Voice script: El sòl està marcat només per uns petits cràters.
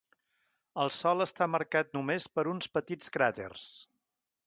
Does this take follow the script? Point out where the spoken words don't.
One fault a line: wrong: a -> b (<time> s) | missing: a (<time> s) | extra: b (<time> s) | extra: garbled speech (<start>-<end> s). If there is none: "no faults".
no faults